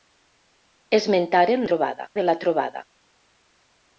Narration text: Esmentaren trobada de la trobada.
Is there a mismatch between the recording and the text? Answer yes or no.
no